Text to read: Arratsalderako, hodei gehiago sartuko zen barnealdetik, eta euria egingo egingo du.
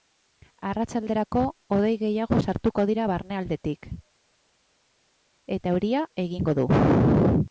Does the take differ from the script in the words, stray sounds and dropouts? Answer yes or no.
yes